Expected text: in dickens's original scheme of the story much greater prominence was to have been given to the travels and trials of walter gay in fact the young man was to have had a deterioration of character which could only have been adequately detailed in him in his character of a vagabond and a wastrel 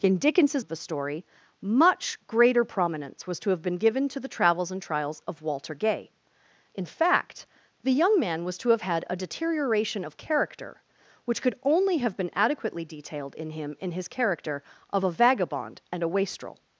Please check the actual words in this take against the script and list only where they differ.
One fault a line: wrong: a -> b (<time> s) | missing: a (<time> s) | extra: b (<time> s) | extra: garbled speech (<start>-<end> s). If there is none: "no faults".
missing: original scheme (0.7 s)